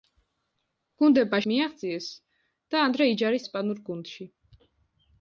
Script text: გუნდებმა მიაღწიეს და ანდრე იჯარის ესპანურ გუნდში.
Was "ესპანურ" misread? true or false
false